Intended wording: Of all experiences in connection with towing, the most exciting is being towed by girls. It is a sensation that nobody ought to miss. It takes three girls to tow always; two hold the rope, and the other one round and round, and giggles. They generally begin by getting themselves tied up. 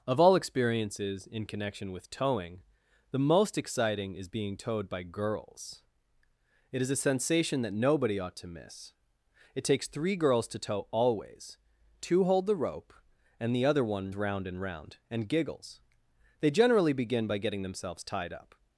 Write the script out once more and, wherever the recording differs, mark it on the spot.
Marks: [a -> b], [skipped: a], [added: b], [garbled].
Of all experiences in connection with towing, the most exciting is being towed by girls. It is a sensation that nobody ought to miss. It takes three girls to tow always; two hold the rope, and the other one round and round, and giggles. They generally begin by getting themselves tied up.